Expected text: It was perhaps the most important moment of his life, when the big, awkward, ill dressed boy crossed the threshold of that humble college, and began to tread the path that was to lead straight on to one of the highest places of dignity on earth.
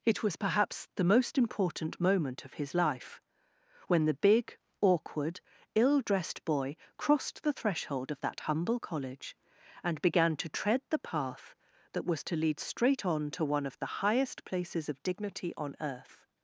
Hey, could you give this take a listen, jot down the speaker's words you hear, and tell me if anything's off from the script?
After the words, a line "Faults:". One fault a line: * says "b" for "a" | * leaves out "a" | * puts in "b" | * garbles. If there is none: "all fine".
It was perhaps the most important moment of his life, when the big, awkward, ill dressed boy crossed the threshold of that humble college, and began to tread the path that was to lead straight on to one of the highest places of dignity on earth.
Faults:
all fine